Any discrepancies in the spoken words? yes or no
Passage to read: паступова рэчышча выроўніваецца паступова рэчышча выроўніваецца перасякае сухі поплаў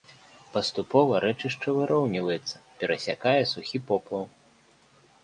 yes